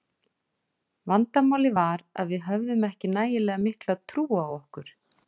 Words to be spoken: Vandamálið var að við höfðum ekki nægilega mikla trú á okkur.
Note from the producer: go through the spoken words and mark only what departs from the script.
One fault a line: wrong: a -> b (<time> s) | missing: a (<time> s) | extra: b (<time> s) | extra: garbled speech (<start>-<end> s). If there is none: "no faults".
no faults